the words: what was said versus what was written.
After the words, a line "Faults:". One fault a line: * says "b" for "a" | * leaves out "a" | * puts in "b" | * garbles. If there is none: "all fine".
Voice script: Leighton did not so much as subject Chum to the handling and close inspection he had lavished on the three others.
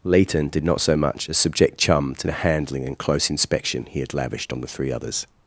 Leighton did not so much as subject Chum to the handling and close inspection he had lavished on the three others.
Faults:
all fine